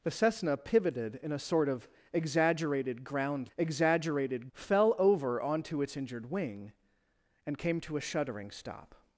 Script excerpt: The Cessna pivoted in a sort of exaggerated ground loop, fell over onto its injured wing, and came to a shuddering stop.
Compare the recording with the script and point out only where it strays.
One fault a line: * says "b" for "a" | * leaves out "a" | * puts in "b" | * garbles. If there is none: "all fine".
* says "exaggerated" for "loop"